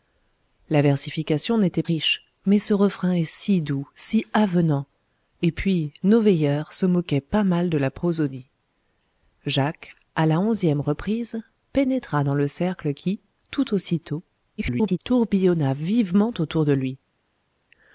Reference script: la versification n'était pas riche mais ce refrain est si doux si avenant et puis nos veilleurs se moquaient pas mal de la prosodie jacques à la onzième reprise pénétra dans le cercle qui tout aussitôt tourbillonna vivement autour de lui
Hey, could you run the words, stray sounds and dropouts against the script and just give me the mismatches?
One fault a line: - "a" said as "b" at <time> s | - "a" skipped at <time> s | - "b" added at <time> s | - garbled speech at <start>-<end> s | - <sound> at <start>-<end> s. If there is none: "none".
- "pas" skipped at 1.8 s
- garbled speech at 14.6-15.0 s